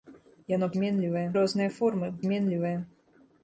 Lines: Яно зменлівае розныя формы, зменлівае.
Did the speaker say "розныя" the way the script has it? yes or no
yes